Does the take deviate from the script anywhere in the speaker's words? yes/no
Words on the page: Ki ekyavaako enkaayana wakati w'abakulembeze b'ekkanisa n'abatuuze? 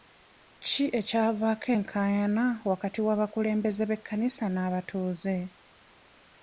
no